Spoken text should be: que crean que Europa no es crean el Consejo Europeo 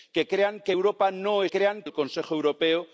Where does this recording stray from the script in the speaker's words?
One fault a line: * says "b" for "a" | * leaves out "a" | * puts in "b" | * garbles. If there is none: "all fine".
all fine